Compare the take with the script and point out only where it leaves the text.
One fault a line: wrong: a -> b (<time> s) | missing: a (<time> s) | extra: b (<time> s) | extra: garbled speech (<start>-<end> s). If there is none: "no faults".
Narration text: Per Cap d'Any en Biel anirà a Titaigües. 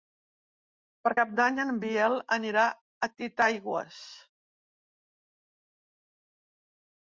no faults